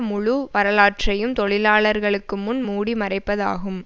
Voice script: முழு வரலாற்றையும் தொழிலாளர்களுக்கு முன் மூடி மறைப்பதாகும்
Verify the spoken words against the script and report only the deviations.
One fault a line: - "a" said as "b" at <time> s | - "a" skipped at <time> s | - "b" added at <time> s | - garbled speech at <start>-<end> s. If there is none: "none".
none